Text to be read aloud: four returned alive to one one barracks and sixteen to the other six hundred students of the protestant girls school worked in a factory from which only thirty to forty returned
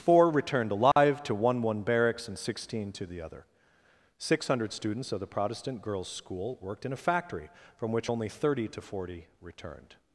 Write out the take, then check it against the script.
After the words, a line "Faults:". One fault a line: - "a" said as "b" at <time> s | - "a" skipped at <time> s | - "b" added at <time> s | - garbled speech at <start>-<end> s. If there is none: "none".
four returned alive to one one barracks and sixteen to the other six hundred students of the protestant girls school worked in a factory from which only thirty to forty returned
Faults:
none